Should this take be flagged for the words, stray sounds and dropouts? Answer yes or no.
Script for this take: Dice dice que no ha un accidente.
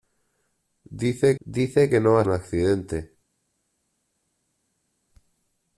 no